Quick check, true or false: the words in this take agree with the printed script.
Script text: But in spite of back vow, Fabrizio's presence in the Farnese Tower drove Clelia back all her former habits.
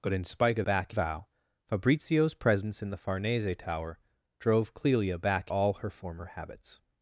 true